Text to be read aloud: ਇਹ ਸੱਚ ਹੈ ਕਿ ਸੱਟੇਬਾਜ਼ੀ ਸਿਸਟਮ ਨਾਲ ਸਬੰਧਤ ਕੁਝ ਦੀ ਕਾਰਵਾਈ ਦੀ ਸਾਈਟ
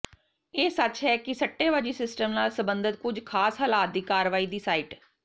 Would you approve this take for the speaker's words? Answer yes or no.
no